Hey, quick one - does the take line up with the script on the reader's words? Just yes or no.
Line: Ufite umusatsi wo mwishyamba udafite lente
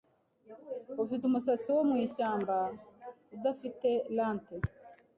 yes